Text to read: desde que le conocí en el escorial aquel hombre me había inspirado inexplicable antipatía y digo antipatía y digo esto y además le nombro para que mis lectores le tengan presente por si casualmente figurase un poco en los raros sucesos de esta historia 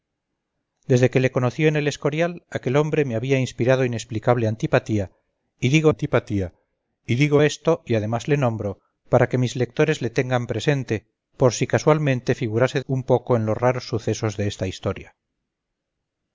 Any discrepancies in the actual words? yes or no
no